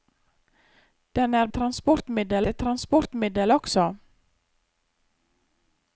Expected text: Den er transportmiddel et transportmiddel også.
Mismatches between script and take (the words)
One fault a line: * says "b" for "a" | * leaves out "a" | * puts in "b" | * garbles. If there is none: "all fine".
all fine